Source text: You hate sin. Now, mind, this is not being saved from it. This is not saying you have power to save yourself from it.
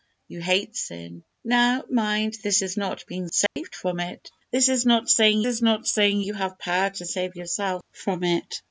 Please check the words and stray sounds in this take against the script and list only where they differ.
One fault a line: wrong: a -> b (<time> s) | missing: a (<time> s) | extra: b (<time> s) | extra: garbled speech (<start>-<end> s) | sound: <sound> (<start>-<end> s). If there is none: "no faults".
sound: dropout (3.5-3.6 s)
extra: is not saying (5.4 s)